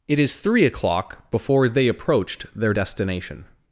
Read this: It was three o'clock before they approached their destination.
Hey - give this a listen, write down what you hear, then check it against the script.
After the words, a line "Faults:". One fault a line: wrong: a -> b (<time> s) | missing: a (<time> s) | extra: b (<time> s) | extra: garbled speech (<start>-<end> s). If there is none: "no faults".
It is three o'clock before they approached their destination.
Faults:
wrong: was -> is (0.2 s)